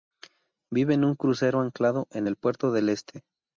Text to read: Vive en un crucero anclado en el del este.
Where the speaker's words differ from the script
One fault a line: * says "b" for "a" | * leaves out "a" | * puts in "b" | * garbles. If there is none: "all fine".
* puts in "puerto"